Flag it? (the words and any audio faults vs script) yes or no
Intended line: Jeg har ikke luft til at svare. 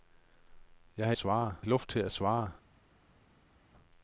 yes